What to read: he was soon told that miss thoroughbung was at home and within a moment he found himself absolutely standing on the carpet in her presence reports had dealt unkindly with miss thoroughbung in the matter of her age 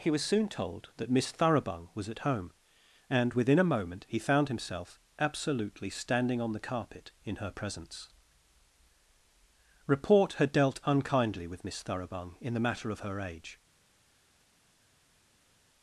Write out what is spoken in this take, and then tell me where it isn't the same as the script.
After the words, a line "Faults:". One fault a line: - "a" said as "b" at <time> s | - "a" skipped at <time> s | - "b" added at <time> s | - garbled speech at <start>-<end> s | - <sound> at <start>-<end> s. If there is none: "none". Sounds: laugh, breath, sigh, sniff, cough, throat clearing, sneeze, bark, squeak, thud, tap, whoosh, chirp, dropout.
he was soon told that miss thoroughbung was at home and within a moment he found himself absolutely standing on the carpet in her presence report had dealt unkindly with miss thoroughbung in the matter of her age
Faults:
- "reports" said as "report" at 9.8 s